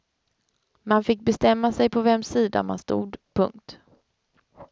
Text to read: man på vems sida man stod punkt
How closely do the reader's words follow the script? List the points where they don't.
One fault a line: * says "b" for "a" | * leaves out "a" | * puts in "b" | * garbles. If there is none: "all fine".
* puts in "fick bestämma sig"